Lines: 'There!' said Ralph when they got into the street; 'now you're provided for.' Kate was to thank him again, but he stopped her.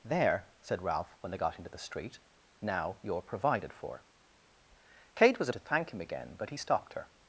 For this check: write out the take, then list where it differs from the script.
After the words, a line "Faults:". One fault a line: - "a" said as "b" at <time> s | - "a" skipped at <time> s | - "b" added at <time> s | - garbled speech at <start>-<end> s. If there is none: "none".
'There!' said Ralph when they got into the street; 'now you're provided for.' Kate was to thank him again, but he stopped her.
Faults:
none